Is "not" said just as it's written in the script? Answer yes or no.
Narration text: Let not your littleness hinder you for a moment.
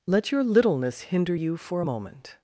no